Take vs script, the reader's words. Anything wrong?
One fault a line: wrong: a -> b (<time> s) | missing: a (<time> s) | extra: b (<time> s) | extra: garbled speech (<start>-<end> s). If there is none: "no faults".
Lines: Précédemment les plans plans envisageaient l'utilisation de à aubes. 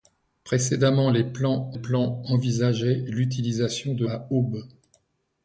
no faults